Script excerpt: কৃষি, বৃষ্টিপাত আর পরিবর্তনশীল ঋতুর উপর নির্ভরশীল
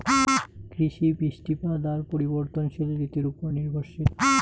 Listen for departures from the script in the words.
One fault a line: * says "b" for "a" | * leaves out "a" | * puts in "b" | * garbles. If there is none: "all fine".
all fine